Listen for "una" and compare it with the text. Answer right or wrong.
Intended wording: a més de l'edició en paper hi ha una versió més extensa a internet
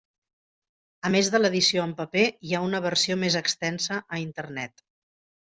right